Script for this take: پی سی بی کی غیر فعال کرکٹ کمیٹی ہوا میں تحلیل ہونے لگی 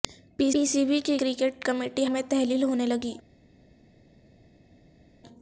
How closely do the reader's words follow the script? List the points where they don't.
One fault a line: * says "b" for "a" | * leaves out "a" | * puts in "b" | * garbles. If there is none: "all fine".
* puts in "پی"
* leaves out "غیر فعال"
* leaves out "ہوا"